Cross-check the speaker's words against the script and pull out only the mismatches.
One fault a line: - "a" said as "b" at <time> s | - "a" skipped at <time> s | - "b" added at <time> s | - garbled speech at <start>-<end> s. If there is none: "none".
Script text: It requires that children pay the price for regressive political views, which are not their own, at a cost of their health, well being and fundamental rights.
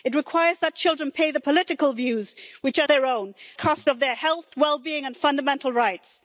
- "price for regressive" skipped at 1.4 s
- "not" skipped at 2.9 s
- "at" skipped at 3.3 s